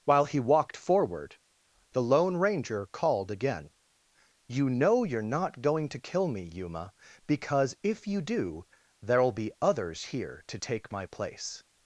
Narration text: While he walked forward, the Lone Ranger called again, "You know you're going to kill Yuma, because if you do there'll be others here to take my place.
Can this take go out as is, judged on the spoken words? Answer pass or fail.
fail